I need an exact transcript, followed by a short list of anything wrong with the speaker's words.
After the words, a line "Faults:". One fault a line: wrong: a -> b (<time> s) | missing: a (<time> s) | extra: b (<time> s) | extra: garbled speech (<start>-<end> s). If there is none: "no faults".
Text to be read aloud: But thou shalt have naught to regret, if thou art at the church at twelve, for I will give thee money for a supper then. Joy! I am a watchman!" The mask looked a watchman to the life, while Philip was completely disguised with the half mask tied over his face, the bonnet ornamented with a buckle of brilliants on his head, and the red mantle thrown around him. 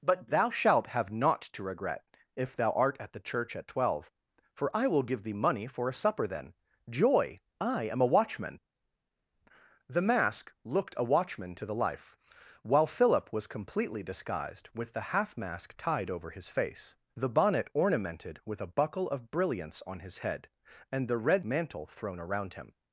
But thou shalt have naught to regret, if thou art at the church at twelve, for I will give thee money for a supper then. Joy! I am a watchman!" The mask looked a watchman to the life, while Philip was completely disguised with the half mask tied over his face, the bonnet ornamented with a buckle of brilliants on his head, and the red mantle thrown around him.
Faults:
no faults